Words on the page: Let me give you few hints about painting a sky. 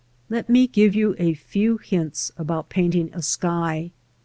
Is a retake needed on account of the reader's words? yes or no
yes